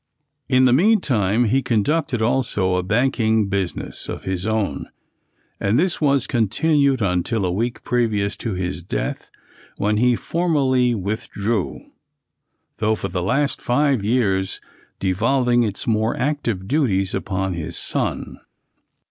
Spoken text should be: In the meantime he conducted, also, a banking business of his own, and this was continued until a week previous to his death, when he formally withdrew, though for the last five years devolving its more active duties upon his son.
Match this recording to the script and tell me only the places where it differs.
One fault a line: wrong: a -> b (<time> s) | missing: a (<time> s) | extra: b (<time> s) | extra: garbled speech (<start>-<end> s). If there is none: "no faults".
no faults